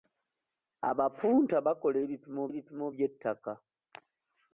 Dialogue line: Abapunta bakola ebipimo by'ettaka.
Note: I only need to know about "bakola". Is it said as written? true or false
true